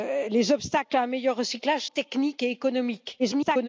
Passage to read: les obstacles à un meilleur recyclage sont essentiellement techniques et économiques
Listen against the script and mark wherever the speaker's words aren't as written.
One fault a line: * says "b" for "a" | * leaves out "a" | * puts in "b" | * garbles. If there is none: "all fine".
* leaves out "sont essentiellement"
* garbles